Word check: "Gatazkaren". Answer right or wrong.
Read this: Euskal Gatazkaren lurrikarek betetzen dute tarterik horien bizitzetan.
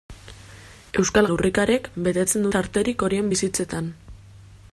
wrong